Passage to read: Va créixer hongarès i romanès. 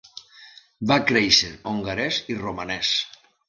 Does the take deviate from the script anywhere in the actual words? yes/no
no